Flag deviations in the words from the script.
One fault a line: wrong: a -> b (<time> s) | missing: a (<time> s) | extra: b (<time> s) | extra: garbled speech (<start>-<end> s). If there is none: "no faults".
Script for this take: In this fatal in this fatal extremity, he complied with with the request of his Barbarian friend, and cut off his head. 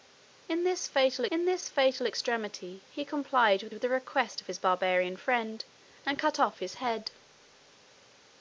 no faults